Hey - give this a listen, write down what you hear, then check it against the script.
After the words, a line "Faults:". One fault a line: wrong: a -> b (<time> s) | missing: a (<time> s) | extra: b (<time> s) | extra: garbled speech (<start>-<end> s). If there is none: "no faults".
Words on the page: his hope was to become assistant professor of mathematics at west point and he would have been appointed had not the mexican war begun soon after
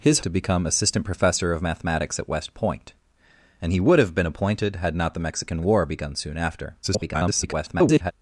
his to become assistant professor of mathematics at west point and he would have been appointed had not the mexican war begun soon after [garbled]
Faults:
missing: hope was (0.2 s)
extra: garbled speech (6.8-8.1 s)